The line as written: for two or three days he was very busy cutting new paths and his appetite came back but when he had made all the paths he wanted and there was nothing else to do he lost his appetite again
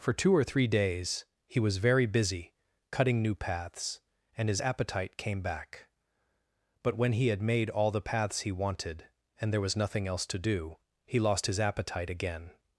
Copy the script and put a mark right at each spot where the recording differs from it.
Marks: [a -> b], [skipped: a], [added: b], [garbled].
for two or three days he was very busy cutting new paths and his appetite came back but when he had made all the paths he wanted and there was nothing else to do he lost his appetite again